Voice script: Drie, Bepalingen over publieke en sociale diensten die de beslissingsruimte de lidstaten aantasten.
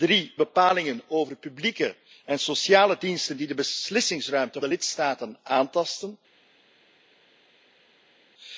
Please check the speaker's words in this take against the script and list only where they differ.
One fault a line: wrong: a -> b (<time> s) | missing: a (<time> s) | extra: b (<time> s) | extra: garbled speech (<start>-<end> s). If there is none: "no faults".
no faults